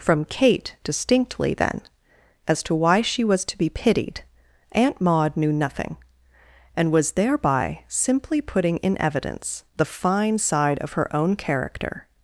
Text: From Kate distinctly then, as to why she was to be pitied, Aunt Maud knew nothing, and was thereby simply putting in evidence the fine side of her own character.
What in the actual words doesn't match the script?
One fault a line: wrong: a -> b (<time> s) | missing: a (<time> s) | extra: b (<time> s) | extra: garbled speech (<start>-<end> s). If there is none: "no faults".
no faults